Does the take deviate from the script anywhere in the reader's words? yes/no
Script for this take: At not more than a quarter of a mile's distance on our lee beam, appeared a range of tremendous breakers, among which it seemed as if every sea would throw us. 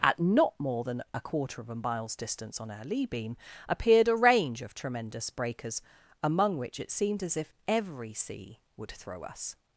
no